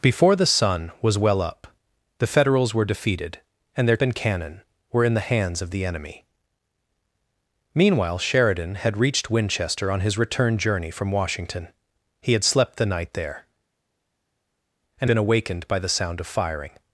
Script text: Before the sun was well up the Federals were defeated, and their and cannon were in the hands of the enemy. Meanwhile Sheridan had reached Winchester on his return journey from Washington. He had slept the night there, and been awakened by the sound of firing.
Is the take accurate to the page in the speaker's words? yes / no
yes